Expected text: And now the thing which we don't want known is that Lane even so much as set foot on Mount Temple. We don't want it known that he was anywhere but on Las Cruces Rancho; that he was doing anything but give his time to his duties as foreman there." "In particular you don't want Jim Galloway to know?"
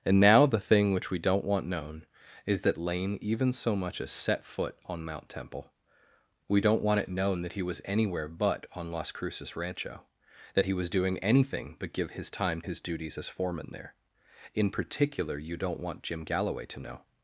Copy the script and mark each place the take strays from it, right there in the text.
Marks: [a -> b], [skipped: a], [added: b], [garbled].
And now the thing which we don't want known is that Lane even so much as set foot on Mount Temple. We don't want it known that he was anywhere but on Las Cruces Rancho; that he was doing anything but give his time [skipped: to] his duties as foreman there." "In particular you don't want Jim Galloway to know?"